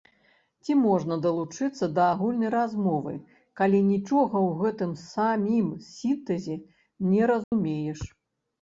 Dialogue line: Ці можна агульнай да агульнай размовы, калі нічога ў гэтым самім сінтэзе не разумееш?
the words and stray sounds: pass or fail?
fail